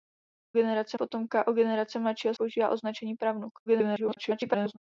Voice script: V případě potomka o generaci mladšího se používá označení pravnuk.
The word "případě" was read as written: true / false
false